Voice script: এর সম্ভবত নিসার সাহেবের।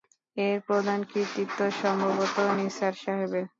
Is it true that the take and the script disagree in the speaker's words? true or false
true